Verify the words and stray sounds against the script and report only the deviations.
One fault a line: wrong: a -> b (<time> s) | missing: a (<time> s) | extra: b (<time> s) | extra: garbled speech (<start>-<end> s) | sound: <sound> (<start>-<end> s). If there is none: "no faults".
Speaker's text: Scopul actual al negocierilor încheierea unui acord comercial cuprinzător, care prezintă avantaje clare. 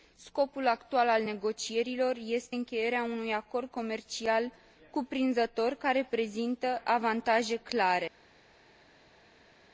extra: este (2.2 s)